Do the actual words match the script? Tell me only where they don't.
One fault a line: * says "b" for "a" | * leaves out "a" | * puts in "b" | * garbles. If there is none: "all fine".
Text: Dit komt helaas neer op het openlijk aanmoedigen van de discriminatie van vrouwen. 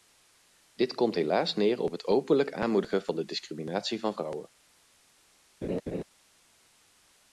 all fine